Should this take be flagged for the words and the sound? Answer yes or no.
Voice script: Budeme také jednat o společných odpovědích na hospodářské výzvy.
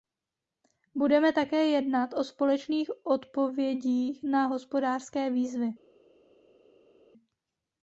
no